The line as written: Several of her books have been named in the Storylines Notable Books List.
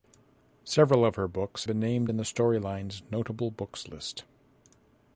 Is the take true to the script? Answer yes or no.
no